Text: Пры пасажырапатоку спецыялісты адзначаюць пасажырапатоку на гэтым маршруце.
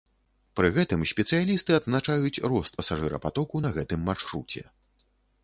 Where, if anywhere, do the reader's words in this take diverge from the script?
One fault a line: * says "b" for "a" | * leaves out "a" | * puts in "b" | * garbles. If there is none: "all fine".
* says "гэтым" for "пасажырапатоку"
* puts in "рост"